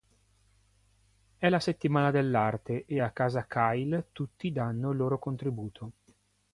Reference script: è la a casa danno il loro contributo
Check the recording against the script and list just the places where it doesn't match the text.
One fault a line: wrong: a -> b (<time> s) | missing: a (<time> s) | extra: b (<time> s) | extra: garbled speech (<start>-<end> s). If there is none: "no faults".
extra: settimana dell'arte e (1.6 s)
extra: kyle tutti (3.5 s)